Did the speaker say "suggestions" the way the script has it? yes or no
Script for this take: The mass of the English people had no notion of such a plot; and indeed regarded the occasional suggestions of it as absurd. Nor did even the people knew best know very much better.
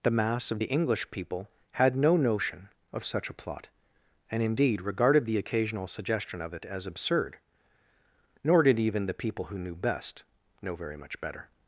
no